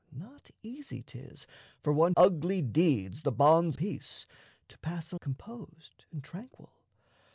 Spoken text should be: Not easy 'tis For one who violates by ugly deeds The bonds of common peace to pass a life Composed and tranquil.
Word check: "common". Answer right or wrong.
wrong